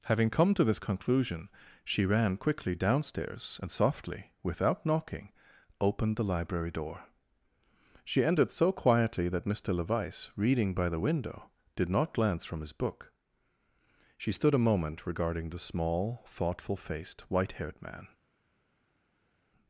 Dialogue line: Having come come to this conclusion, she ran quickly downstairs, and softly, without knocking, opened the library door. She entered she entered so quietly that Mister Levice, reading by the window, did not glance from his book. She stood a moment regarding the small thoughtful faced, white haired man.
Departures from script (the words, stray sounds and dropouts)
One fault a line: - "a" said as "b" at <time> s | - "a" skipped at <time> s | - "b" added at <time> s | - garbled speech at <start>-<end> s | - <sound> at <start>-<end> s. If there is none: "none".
- "come" skipped at 0.5 s
- "she entered" skipped at 8.5 s